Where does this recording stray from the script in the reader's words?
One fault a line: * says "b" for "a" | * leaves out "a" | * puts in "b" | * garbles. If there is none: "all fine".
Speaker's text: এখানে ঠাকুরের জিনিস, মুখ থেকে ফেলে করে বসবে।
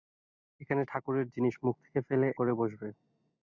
all fine